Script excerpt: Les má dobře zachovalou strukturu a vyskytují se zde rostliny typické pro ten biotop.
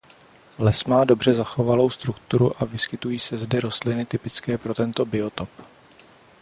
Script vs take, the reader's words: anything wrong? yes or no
yes